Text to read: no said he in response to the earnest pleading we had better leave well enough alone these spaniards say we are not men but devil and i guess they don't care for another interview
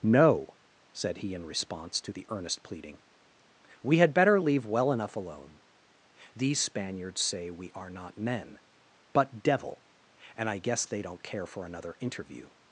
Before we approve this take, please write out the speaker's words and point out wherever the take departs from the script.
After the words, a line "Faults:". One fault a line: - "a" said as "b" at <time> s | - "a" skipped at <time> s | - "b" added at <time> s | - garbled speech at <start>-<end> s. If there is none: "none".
no said he in response to the earnest pleading we had better leave well enough alone these spaniards say we are not men but devil and i guess they don't care for another interview
Faults:
none